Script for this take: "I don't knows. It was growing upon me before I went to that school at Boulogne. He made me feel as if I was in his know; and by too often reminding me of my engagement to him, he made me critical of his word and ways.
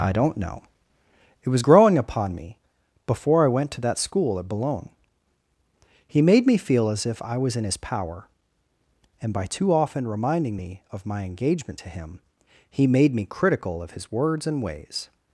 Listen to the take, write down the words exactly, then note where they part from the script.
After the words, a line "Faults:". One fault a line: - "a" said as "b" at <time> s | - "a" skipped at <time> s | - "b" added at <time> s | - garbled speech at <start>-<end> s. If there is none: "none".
"I don't know. It was growing upon me before I went to that school at Boulogne. He made me feel as if I was in his power; and by too often reminding me of my engagement to him, he made me critical of his words and ways.
Faults:
- "knows" said as "know" at 0.3 s
- "know" said as "power" at 7.8 s
- "word" said as "words" at 14.1 s